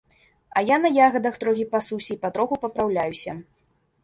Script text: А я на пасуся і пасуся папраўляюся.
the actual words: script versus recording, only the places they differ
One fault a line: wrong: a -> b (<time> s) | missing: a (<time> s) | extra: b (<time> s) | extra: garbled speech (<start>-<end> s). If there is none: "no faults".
extra: ягадах трохі (1.1 s)
wrong: пасуся -> патроху (2.2 s)